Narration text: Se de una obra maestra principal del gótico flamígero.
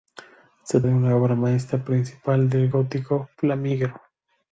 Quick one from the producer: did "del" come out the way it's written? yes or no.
yes